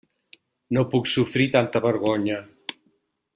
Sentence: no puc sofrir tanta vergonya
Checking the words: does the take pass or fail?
pass